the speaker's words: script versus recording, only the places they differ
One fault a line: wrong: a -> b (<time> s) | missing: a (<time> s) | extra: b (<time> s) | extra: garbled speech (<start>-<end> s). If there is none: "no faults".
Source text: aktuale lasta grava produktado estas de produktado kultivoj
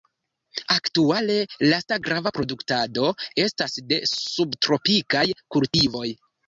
wrong: produktado -> subtropikaj (4.2 s)